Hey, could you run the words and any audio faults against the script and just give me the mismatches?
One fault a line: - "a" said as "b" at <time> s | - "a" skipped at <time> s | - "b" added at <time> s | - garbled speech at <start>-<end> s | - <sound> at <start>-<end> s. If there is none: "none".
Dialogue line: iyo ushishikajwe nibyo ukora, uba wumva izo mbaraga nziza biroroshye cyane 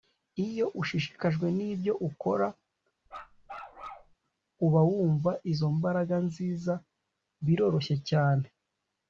- bark at 3.1-4.1 s